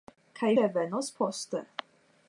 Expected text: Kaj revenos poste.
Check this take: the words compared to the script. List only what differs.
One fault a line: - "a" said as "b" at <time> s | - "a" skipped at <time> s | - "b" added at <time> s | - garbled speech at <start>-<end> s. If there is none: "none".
none